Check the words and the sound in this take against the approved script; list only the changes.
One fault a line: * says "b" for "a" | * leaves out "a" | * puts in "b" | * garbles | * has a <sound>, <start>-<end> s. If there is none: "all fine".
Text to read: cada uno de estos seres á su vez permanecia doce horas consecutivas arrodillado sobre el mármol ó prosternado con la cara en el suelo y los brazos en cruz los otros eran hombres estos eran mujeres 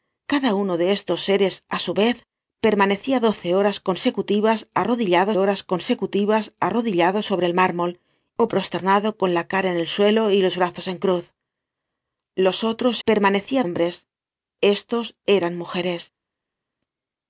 * puts in "horas consecutivas arrodillado"
* says "permanecia" for "eran"